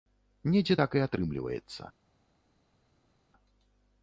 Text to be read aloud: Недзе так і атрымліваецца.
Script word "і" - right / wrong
right